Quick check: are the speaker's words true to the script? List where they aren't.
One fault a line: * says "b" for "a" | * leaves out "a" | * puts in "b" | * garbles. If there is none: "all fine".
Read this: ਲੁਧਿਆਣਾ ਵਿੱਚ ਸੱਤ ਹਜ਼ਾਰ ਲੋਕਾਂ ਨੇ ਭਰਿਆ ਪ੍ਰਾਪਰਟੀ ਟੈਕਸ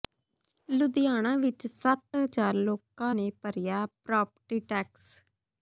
all fine